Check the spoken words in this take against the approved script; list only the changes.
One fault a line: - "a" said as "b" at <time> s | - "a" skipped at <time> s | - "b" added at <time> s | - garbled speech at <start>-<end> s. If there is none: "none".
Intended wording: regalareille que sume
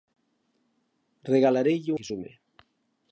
none